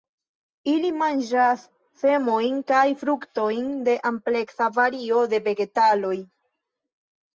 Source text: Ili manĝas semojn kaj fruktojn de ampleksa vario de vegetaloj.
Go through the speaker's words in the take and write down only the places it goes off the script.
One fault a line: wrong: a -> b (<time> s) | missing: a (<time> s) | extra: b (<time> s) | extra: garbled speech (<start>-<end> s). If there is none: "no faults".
no faults